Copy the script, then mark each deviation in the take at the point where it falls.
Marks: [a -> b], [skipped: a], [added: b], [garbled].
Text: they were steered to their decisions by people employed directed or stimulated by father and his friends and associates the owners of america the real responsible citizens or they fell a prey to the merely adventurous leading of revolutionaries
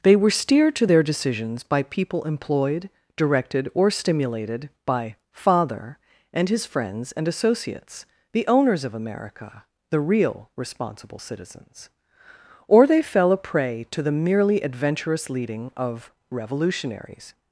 they were steered to their decisions by people employed directed or stimulated by father and his friends and associates the owners of america the real responsible citizens or they fell a prey to the merely adventurous leading of revolutionaries